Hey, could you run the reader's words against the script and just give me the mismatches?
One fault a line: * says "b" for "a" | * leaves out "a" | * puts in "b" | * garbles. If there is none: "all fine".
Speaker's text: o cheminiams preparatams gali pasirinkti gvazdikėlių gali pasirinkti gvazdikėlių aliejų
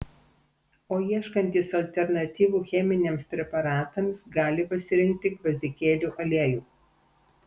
* puts in "ieškantys alternatyvų"
* leaves out "gali pasirinkti gvazdikėlių"